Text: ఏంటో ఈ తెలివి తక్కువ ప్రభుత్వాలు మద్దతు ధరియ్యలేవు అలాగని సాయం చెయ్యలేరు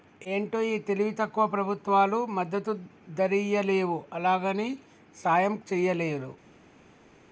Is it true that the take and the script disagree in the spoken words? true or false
false